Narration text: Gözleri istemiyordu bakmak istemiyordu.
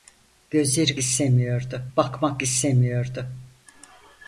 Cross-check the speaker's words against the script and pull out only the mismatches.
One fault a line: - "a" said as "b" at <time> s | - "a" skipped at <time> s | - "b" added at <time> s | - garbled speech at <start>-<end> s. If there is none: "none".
none